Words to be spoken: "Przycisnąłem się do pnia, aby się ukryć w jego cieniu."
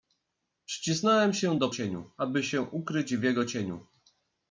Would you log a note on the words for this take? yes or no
yes